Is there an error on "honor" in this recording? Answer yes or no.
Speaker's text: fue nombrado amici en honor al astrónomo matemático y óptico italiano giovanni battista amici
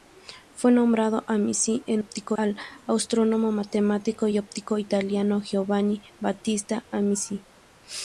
yes